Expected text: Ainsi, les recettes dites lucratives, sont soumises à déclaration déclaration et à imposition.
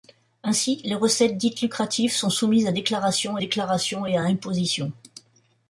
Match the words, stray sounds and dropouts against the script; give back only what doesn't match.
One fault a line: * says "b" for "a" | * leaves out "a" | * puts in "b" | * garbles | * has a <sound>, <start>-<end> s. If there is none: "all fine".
all fine